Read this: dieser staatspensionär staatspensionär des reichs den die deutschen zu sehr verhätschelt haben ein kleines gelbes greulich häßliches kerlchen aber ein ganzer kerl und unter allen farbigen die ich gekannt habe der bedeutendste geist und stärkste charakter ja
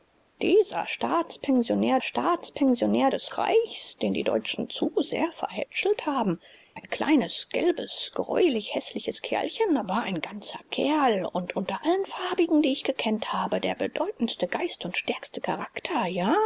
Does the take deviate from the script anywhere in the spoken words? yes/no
no